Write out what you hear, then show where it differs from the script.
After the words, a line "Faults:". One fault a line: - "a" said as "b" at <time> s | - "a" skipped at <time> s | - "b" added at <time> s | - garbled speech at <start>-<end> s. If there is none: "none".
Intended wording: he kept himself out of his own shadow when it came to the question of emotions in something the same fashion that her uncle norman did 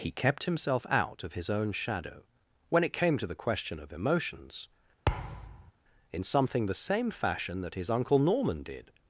he kept himself out of his own shadow when it came to the question of emotions in something the same fashion that his uncle norman did
Faults:
- "her" said as "his" at 7.7 s